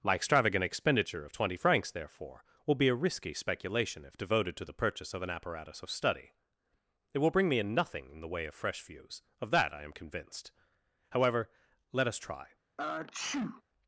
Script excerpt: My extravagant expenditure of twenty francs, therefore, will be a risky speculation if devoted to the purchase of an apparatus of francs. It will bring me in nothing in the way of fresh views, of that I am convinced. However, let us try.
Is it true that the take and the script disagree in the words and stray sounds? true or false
true